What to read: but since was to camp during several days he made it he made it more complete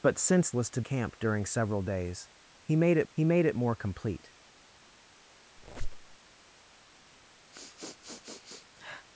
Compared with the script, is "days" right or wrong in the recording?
right